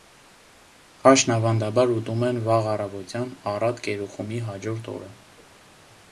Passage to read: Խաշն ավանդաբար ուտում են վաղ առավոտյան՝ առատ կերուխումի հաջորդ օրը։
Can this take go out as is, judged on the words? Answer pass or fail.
pass